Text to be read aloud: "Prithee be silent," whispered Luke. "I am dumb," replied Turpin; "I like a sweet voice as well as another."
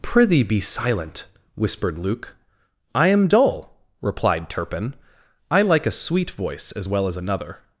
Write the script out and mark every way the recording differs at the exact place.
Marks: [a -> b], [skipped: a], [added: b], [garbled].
"Prithee be silent," whispered Luke. "I am [dumb," -> dull] replied Turpin; "I like a sweet voice as well as another."